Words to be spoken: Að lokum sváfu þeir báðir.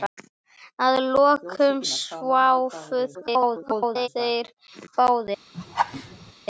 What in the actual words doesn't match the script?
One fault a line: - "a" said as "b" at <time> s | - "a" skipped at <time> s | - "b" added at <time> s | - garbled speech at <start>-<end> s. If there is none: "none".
- garbled speech at 3.1-4.1 s